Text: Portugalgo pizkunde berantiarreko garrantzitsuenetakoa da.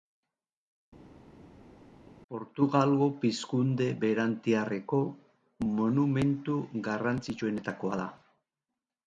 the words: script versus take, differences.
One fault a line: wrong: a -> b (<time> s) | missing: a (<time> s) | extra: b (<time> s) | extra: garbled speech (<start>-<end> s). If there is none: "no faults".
extra: monumentu (5.8 s)